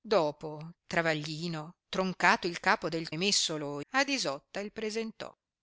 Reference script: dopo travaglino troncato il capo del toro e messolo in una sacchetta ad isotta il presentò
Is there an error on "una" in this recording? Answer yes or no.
yes